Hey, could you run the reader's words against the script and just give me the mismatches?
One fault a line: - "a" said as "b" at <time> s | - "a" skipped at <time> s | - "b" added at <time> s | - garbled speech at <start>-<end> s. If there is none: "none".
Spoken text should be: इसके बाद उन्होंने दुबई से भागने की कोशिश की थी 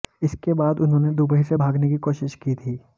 none